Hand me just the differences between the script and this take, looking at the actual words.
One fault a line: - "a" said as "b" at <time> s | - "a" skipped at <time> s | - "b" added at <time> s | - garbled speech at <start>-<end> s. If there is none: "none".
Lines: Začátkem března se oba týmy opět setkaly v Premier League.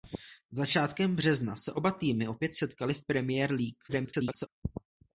- garbled speech at 3.9-4.5 s